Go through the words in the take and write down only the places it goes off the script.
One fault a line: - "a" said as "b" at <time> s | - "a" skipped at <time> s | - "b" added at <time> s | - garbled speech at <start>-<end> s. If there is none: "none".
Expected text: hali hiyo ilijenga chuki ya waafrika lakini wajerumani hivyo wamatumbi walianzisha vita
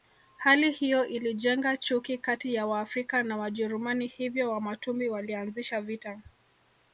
- "kati" added at 2.2 s
- "lakini" said as "na" at 3.2 s